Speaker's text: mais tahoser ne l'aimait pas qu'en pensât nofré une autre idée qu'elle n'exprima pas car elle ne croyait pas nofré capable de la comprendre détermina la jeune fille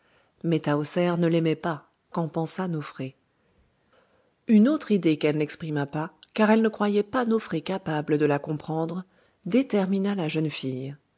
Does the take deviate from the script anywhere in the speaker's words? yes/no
no